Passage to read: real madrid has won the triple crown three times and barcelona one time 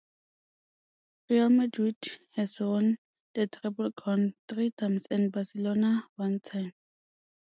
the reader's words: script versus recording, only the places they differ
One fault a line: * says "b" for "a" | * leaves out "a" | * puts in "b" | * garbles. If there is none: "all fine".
all fine